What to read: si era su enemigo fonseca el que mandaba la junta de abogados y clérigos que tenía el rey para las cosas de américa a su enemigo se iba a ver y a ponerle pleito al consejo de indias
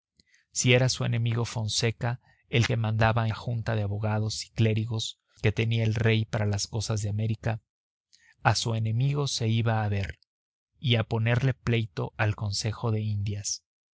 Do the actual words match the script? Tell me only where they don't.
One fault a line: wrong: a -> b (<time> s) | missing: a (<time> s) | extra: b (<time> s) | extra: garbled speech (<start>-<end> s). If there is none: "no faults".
no faults